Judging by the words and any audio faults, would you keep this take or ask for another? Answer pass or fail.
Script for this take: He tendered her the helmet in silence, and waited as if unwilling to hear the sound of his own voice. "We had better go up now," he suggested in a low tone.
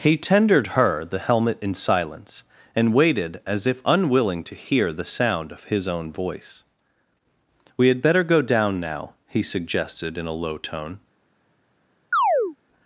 fail